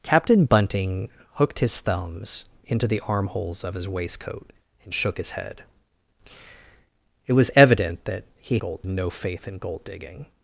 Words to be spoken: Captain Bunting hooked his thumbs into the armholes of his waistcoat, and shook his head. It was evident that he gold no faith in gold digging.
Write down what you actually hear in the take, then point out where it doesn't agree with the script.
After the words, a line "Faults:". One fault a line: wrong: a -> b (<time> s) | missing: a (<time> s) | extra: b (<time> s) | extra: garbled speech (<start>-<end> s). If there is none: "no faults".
Captain Bunting hooked his thumbs into the armholes of his waistcoat, and shook his head. It was evident that he gold no faith in gold digging.
Faults:
no faults